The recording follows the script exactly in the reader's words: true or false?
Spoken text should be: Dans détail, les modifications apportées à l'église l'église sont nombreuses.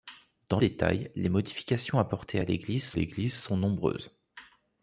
true